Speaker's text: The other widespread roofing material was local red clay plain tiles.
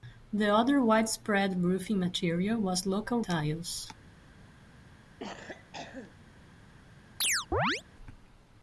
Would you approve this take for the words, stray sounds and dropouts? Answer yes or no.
no